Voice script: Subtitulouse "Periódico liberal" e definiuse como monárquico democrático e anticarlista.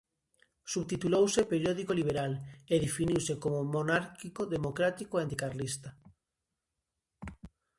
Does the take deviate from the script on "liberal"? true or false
false